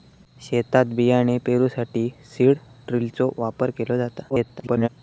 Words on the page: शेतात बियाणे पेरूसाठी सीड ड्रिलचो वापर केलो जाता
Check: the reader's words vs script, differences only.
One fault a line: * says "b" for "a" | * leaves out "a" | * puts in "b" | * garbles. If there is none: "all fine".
* garbles